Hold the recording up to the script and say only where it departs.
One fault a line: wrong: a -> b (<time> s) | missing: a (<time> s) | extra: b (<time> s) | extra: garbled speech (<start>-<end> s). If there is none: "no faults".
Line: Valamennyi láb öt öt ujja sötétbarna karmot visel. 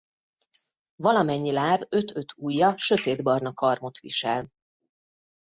no faults